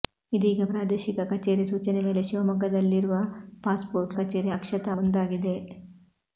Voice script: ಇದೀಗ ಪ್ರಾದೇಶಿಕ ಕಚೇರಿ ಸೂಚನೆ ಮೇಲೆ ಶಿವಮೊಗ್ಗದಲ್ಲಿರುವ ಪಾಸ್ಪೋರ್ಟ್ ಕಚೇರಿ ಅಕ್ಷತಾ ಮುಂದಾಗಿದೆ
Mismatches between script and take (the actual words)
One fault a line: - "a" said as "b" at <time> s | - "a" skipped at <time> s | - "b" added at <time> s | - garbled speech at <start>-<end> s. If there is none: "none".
none